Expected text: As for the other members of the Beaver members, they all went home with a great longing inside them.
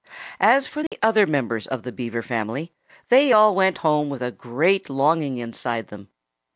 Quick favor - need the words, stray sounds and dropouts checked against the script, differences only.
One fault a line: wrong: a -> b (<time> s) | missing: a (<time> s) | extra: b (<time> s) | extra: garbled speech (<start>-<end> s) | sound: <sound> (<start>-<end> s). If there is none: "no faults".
sound: dropout (0.9-0.9 s)
wrong: members -> family (2.2 s)